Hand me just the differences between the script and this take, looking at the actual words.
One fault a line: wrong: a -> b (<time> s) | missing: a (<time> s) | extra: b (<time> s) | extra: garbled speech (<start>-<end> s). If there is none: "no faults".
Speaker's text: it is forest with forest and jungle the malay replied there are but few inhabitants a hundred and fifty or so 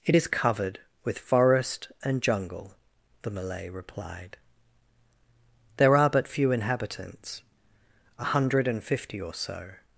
wrong: forest -> covered (0.3 s)